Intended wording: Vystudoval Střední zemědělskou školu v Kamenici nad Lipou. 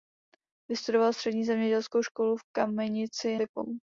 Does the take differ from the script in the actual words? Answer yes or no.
yes